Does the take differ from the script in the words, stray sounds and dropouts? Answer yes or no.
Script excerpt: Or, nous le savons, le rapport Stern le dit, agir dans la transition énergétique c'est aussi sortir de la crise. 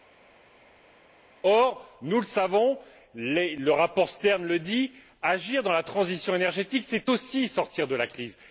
no